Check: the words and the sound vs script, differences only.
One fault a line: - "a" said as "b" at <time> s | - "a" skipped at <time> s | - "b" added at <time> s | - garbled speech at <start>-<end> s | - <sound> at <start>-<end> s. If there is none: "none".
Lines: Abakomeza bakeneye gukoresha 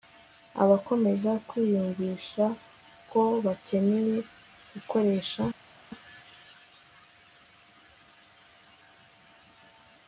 - "kwiyumvisha ko" added at 1.5 s